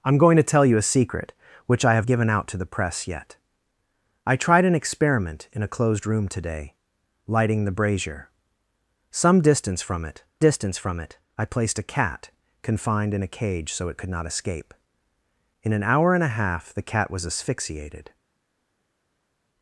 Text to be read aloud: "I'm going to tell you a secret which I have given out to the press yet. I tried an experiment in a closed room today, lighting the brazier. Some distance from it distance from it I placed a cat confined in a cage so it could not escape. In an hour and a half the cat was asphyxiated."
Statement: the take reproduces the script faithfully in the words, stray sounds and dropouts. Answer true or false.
true